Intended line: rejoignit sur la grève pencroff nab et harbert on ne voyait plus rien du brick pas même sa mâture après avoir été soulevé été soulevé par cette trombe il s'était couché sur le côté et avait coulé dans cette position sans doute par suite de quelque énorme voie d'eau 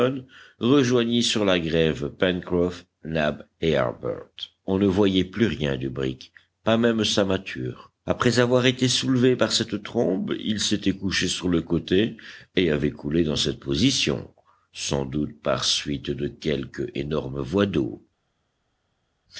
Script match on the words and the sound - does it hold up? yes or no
no